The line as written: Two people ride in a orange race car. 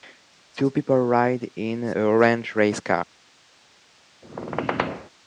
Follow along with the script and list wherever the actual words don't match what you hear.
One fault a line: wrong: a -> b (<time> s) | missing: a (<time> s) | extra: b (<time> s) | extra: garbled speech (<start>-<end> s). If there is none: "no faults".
no faults